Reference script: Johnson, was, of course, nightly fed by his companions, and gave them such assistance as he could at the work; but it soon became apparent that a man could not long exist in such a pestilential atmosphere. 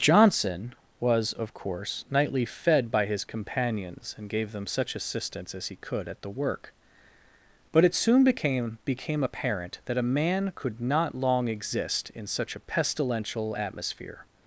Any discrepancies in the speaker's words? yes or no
yes